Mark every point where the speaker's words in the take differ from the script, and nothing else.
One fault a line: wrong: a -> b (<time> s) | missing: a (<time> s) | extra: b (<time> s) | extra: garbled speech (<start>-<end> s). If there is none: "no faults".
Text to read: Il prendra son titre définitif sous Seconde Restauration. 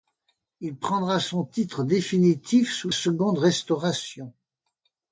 no faults